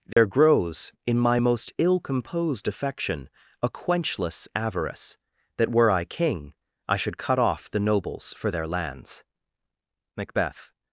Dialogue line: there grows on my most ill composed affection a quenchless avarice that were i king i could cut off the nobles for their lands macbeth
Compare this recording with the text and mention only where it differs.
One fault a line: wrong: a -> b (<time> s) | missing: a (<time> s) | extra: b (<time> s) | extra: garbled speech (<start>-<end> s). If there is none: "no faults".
wrong: on -> in (1.1 s)
wrong: could -> should (7.0 s)